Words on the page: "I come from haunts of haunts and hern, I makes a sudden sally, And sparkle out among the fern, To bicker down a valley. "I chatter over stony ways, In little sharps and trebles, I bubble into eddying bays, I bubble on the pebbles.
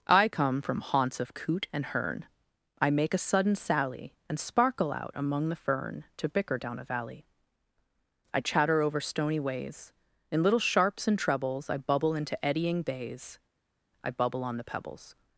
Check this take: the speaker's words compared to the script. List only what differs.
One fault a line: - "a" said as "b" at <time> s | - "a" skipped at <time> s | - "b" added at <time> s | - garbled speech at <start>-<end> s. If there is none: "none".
- "haunts" said as "coot" at 1.4 s
- "makes" said as "make" at 2.9 s